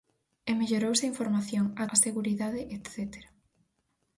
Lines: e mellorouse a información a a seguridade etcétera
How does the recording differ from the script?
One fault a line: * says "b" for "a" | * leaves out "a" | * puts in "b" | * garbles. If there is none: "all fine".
all fine